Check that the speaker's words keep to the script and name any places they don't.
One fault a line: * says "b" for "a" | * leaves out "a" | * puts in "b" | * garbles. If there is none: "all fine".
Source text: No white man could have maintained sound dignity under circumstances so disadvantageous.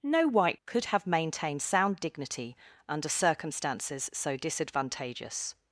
* leaves out "man"